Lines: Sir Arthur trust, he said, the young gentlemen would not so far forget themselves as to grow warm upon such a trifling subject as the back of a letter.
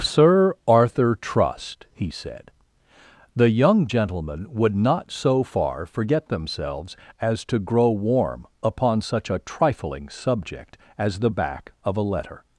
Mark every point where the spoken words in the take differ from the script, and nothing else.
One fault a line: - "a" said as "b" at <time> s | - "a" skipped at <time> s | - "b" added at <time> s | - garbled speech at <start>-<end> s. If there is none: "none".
none